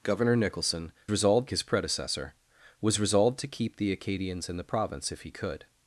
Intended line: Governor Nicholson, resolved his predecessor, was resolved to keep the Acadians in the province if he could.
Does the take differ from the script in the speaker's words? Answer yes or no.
no